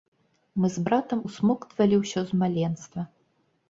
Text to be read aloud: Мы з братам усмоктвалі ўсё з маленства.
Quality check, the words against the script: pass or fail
pass